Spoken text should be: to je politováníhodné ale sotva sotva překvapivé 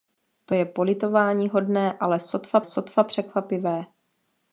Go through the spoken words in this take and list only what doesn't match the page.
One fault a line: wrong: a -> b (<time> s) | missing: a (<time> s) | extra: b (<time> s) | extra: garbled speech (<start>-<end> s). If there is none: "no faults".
no faults